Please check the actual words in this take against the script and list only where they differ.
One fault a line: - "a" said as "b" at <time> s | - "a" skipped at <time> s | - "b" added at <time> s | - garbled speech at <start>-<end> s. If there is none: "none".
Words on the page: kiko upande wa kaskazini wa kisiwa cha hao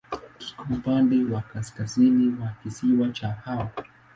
none